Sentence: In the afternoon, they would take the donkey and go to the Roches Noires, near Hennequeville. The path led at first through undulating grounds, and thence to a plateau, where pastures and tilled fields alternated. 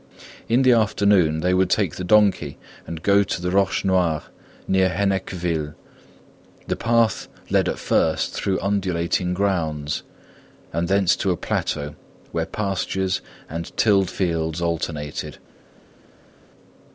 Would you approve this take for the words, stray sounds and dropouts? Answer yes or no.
yes